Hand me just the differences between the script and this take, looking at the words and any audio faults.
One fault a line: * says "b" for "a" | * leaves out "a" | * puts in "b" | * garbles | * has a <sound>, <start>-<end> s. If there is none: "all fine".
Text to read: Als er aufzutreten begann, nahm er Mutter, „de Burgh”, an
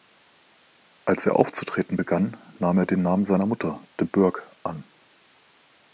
* puts in "den Namen seiner"